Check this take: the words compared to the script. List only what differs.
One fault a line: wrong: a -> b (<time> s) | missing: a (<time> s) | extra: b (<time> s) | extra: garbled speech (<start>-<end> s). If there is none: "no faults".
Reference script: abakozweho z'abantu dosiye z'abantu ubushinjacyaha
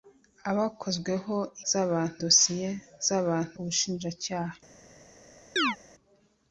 no faults